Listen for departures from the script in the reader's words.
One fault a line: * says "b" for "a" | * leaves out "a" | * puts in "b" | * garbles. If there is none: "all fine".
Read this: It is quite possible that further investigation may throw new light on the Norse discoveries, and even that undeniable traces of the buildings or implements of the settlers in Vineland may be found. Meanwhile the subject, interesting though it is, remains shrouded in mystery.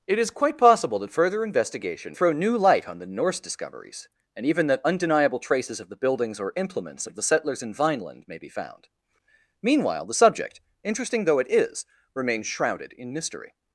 * leaves out "may"